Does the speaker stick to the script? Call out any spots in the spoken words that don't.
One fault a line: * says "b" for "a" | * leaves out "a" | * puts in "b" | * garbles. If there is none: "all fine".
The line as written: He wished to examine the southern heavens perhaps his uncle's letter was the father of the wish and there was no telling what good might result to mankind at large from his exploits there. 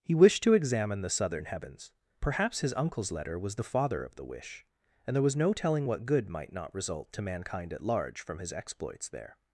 * puts in "not"